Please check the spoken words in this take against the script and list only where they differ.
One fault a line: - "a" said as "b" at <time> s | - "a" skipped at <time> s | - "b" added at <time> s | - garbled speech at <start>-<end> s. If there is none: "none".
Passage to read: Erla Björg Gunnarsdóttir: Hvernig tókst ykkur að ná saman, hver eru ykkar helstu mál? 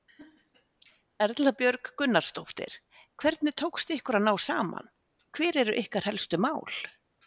none